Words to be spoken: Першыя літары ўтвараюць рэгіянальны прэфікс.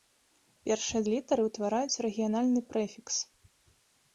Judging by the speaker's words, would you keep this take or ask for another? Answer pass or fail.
pass